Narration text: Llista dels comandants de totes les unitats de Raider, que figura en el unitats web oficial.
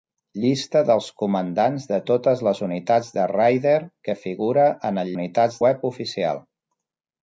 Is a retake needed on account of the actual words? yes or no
no